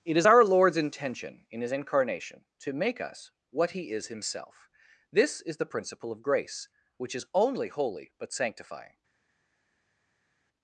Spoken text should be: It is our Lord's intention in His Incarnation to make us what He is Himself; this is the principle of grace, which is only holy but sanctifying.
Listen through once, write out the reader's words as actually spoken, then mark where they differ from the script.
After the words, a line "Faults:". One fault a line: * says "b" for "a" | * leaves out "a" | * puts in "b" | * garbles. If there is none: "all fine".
It is our Lord's intention in His Incarnation to make us what He is Himself; this is the principle of grace, which is only holy but sanctifying.
Faults:
all fine